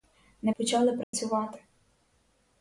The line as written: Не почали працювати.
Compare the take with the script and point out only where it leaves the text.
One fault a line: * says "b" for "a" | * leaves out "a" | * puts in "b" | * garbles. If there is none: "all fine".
all fine